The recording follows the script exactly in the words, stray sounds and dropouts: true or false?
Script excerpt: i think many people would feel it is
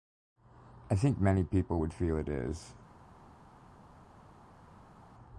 true